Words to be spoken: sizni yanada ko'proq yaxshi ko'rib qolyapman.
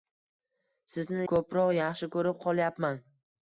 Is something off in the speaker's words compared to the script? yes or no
yes